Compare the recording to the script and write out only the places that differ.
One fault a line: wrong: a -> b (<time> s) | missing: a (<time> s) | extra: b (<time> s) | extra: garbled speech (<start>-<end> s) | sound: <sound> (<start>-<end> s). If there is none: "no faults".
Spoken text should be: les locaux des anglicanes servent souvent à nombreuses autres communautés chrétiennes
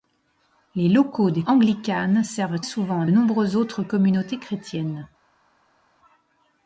no faults